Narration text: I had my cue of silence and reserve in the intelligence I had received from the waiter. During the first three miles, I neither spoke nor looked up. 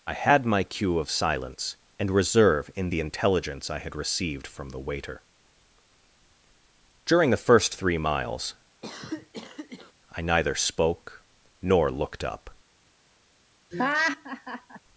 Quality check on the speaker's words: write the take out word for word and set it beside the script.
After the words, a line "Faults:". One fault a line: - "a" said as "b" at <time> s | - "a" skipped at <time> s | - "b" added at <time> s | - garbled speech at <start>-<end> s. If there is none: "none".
I had my cue of silence and reserve in the intelligence I had received from the waiter. During the first three miles, I neither spoke nor looked up.
Faults:
none